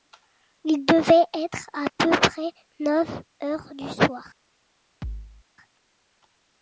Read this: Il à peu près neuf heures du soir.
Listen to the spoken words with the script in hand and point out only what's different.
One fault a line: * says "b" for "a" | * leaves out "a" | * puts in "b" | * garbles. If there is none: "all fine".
* puts in "devait être"